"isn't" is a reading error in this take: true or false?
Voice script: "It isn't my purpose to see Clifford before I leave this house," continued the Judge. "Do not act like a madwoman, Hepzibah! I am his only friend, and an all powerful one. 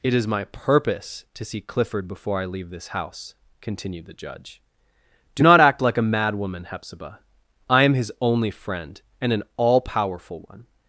true